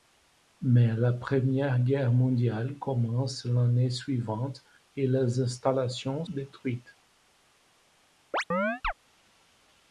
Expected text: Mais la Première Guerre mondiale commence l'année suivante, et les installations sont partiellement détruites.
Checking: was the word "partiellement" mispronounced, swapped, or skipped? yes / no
yes